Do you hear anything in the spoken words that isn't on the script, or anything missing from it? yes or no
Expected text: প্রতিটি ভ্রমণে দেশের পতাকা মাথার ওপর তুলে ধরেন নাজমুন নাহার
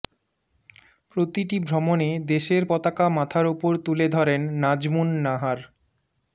no